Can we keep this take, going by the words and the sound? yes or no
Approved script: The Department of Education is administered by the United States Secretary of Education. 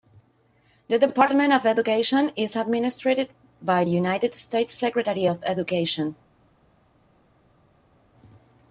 no